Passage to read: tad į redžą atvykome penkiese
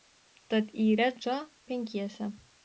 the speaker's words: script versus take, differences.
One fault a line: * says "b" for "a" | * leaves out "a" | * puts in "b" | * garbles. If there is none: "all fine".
* leaves out "atvykome"